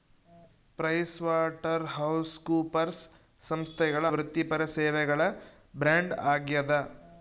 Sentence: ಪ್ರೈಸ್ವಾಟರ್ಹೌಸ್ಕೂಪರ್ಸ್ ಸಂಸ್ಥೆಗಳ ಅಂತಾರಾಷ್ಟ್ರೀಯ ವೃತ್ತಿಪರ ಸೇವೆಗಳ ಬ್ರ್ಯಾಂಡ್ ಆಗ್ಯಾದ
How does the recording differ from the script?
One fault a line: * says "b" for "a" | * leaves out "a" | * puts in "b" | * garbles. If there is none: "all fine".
* leaves out "ಅಂತಾರಾಷ್ಟ್ರೀಯ"